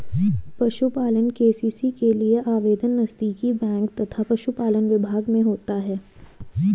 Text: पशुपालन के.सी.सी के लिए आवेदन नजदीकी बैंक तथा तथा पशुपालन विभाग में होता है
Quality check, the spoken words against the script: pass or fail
fail